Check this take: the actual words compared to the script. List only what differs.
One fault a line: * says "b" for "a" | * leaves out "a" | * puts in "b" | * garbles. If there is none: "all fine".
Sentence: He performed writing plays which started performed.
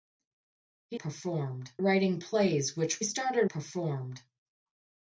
all fine